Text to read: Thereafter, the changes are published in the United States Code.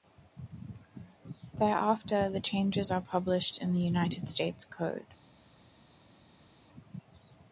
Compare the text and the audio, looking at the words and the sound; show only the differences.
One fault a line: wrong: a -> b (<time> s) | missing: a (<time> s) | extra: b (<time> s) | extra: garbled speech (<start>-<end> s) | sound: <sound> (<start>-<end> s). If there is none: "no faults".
no faults